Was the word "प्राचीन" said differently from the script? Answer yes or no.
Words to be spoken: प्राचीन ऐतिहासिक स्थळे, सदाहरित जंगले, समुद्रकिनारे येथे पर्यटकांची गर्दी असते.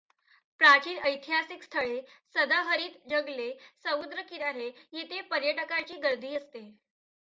no